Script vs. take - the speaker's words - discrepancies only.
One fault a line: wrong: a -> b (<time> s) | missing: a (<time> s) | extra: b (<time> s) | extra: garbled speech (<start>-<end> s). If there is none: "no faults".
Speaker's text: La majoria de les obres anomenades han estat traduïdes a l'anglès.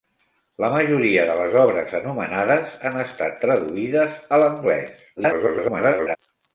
extra: garbled speech (5.2-6.2 s)